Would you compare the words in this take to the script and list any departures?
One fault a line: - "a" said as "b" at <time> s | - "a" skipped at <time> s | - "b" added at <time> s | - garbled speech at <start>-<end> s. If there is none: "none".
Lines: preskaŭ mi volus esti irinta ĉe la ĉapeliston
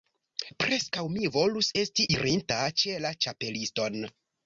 none